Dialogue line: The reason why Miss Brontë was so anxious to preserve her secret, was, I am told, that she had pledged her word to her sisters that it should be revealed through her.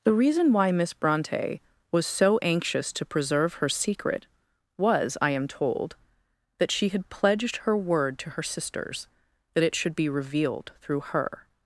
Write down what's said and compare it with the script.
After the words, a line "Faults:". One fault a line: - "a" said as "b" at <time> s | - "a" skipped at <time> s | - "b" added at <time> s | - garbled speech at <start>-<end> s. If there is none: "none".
The reason why Miss Brontë was so anxious to preserve her secret, was, I am told, that she had pledged her word to her sisters that it should be revealed through her.
Faults:
none